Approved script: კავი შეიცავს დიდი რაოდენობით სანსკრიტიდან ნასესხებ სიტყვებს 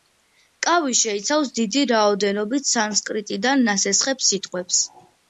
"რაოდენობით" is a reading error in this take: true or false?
false